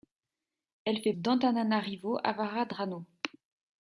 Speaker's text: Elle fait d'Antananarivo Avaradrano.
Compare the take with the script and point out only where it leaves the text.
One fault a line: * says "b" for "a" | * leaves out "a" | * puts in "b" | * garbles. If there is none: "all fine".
all fine